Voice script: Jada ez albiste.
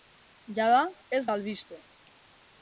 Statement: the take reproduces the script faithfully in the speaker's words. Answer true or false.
true